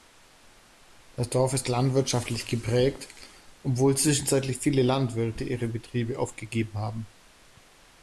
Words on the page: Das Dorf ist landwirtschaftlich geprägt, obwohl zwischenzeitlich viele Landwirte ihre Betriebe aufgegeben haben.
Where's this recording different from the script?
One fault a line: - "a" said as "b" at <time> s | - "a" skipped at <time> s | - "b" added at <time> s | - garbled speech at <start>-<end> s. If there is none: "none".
none